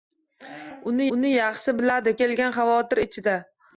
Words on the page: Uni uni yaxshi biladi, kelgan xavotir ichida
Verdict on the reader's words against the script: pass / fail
pass